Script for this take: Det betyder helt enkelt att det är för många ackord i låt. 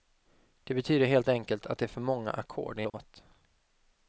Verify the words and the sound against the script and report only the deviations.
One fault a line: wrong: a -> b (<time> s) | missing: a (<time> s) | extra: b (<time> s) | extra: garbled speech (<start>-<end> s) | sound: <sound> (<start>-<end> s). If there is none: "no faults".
sound: dropout (2.9-2.9 s)